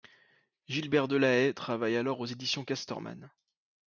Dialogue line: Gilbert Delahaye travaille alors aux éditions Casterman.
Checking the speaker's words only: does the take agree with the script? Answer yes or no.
yes